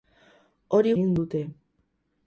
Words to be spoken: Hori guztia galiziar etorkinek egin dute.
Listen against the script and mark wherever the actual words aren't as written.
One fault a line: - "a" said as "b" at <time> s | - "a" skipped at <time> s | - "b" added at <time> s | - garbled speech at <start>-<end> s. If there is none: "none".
- "guztia galiziar etorkinek" skipped at 0.9 s